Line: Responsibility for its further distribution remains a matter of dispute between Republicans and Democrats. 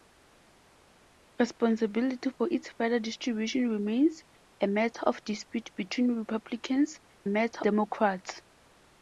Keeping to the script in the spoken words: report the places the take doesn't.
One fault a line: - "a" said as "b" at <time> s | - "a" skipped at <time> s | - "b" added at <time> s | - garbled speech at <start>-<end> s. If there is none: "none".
- "and" said as "matter" at 7.3 s